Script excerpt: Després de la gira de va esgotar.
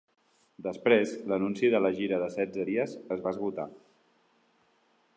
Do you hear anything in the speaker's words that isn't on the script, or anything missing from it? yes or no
yes